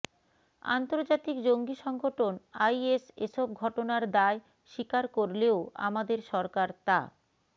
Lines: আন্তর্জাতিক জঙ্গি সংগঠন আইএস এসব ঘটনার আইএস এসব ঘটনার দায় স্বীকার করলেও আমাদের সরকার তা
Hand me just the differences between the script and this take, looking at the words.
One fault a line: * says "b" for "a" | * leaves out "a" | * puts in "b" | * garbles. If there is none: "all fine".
* leaves out "আইএস এসব ঘটনার"